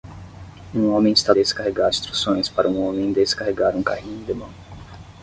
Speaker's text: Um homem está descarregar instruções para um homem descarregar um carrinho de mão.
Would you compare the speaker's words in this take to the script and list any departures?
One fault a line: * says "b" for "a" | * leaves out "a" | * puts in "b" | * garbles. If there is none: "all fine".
all fine